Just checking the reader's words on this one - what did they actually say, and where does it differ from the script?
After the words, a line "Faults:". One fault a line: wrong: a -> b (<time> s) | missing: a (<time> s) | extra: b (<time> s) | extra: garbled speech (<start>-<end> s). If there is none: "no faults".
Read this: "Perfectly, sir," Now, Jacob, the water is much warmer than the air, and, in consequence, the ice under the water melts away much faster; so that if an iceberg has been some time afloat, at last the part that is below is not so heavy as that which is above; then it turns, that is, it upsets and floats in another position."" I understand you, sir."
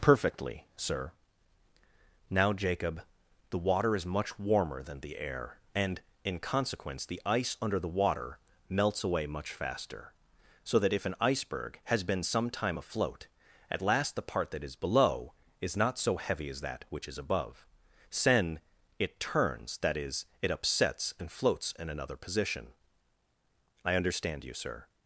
"Perfectly, sir," Now, Jacob, the water is much warmer than the air, and, in consequence, the ice under the water melts away much faster; so that if an iceberg has been some time afloat, at last the part that is below is not so heavy as that which is above; sen it turns, that is, it upsets and floats in another position."" I understand you, sir."
Faults:
wrong: then -> sen (18.1 s)